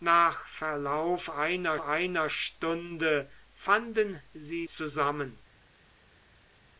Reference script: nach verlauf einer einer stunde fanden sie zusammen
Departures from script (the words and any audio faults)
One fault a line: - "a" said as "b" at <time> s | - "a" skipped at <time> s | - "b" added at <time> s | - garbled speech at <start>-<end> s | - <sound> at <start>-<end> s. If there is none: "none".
none